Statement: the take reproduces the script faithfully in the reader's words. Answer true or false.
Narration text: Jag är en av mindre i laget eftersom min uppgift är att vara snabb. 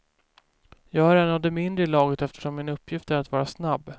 false